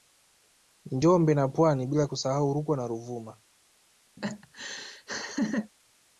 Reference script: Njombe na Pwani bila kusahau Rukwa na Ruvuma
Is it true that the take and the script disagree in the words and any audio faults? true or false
true